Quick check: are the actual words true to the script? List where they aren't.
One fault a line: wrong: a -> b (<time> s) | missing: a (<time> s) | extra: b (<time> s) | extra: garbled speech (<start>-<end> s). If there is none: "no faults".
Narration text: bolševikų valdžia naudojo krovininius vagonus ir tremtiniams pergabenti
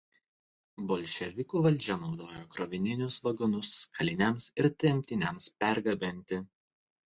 extra: kaliniams (4.0 s)